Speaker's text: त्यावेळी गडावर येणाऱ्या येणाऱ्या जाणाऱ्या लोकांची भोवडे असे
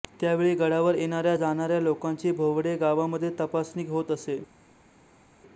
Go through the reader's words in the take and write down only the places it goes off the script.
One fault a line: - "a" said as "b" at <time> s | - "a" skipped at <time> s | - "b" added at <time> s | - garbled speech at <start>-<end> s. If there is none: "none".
- "येणाऱ्या" skipped at 1.4 s
- "गावामध्ये तपासणी होत" added at 2.8 s